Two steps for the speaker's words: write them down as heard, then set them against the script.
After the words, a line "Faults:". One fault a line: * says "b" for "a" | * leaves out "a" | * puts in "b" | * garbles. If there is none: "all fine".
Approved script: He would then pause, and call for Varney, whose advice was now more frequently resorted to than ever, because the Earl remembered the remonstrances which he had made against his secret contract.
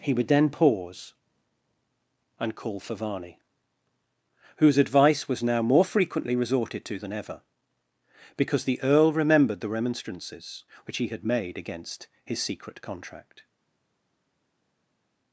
He would then pause, and call for Varney, whose advice was now more frequently resorted to than ever, because the Earl remembered the remonstrances which he had made against his secret contract.
Faults:
all fine